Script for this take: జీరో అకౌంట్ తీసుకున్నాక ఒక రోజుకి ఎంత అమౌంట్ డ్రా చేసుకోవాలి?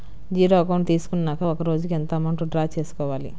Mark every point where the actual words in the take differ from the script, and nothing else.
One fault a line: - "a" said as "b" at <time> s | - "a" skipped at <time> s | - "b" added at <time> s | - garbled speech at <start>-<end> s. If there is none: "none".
none